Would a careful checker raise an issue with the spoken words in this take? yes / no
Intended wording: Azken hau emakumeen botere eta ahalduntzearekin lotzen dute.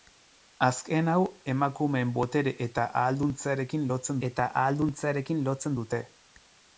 yes